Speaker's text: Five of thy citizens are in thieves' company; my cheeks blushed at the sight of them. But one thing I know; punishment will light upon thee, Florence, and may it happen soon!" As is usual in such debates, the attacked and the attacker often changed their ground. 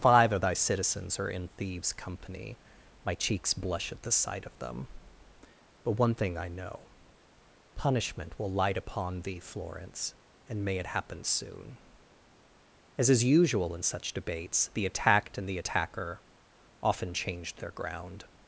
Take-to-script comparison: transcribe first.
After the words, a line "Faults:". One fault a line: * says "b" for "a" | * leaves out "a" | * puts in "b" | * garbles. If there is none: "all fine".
Five of thy citizens are in thieves' company; my cheeks blush at the sight of them. But one thing I know; punishment will light upon thee, Florence, and may it happen soon!" As is usual in such debates, the attacked and the attacker often changed their ground.
Faults:
* says "blush" for "blushed"